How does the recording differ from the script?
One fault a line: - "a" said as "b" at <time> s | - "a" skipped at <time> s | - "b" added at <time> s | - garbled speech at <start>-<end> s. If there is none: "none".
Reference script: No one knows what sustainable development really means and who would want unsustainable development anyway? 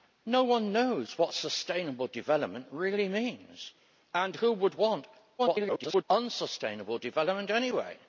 - garbled speech at 5.4-6.0 s